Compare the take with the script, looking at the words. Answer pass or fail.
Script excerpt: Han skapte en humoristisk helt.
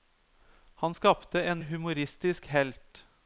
pass